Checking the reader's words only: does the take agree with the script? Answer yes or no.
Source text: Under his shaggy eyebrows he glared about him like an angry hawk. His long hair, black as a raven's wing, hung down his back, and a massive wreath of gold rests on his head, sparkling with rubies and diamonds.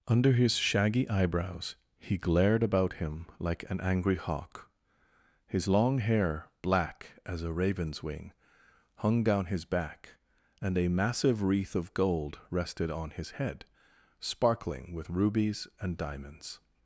no